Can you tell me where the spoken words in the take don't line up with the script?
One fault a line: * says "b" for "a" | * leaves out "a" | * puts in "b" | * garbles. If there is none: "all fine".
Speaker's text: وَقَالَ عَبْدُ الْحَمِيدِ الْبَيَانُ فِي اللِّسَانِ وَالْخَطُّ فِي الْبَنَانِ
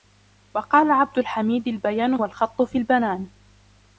* leaves out "فِي اللِّسَانِ"